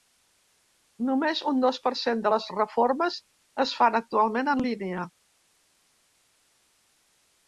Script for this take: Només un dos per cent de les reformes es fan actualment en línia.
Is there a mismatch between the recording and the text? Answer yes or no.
no